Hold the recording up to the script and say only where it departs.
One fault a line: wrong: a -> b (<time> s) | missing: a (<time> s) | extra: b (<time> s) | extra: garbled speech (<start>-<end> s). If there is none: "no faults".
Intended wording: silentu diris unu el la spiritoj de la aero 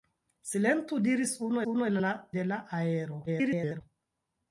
extra: unu (1.7 s)
missing: spiritoj (2.1 s)
extra: garbled speech (3.3-3.8 s)